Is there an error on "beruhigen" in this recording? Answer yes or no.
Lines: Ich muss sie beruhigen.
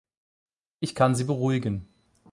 no